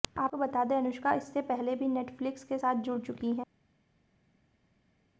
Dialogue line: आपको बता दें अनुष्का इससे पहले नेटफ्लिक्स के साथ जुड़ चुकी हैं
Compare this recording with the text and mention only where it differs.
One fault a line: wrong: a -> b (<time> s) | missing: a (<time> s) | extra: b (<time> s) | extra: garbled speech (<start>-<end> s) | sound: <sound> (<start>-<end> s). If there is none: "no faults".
extra: भी (1.8 s)